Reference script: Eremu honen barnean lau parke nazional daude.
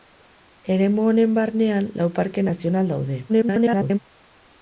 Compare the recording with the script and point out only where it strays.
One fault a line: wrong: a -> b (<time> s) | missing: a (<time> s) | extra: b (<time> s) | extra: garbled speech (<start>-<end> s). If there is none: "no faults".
extra: garbled speech (3.3-4.0 s)